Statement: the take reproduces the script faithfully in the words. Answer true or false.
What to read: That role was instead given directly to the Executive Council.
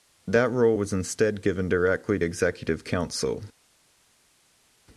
false